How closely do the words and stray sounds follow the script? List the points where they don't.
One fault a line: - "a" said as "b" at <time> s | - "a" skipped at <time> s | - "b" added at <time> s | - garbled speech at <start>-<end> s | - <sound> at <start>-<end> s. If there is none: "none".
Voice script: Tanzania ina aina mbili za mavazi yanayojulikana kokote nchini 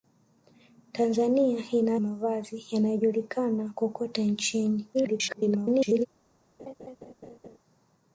- "aina mbili za" skipped at 1.9 s
- garbled speech at 4.9-6.1 s
- laugh at 6.6-7.6 s